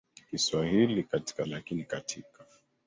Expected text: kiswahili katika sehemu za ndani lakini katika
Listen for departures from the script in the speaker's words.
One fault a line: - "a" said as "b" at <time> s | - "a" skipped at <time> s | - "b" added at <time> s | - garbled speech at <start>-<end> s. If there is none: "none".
- "sehemu za ndani" skipped at 1.5 s